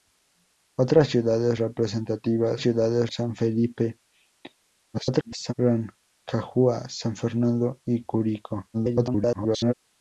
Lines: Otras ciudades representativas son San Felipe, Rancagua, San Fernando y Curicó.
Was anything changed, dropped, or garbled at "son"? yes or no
yes